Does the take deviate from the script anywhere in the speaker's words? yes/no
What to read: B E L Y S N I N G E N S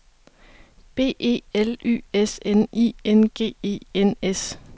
no